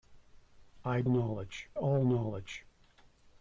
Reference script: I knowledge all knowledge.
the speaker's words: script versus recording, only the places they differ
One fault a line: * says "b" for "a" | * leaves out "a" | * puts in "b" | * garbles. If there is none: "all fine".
all fine